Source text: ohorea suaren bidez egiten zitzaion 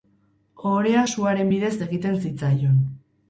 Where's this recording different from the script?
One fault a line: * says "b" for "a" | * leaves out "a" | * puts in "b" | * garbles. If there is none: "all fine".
all fine